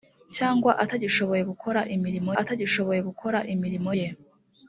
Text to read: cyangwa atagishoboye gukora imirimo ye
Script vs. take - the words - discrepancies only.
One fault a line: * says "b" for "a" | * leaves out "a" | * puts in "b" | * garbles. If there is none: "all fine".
* puts in "atagishoboye gukora imirimo"